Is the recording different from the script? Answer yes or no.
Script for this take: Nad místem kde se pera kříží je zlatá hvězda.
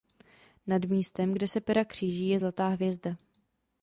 no